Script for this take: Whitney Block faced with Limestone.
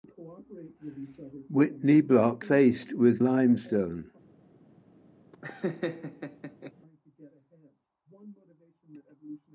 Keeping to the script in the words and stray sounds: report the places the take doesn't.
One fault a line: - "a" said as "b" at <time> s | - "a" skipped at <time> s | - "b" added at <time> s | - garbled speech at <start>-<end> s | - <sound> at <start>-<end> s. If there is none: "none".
- laugh at 5.3-6.7 s